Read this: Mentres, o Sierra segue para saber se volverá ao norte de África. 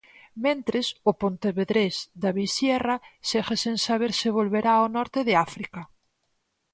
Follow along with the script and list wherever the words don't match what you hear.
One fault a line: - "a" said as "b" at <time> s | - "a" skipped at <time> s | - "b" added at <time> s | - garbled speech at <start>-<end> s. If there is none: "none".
- "pontevedrés David" added at 1.2 s
- "para" said as "sen" at 3.6 s